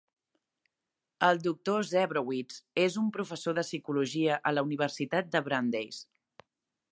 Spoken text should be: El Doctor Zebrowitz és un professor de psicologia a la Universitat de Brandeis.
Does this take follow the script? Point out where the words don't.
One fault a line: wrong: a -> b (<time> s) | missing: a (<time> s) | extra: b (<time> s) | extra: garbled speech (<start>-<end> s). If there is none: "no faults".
no faults